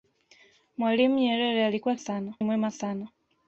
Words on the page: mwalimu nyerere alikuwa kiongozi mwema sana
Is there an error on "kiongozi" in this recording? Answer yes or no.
yes